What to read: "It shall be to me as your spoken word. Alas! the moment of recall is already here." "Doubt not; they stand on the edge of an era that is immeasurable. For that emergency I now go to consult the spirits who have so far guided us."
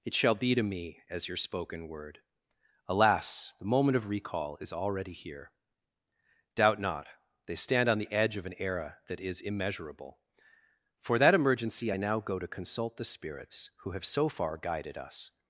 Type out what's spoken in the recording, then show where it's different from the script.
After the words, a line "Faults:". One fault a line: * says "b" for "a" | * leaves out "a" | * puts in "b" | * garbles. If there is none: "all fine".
"It shall be to me as your spoken word. Alas! the moment of recall is already here." "Doubt not; they stand on the edge of an era that is immeasurable. For that emergency I now go to consult the spirits who have so far guided us."
Faults:
all fine